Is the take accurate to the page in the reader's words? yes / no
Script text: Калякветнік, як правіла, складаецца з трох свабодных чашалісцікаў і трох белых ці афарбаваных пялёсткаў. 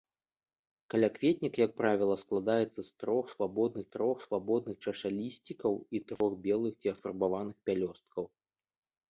no